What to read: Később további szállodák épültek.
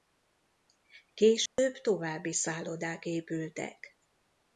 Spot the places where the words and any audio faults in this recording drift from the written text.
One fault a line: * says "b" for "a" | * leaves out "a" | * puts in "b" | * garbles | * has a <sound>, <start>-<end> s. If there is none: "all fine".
* has a dropout, 1.5-1.6 s